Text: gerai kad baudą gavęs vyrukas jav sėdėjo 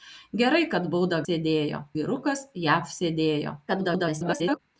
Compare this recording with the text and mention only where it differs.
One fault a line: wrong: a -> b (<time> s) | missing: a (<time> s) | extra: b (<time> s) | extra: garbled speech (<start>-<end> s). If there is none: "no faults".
wrong: gavęs -> sėdėjo (1.3 s)
extra: garbled speech (3.7-4.6 s)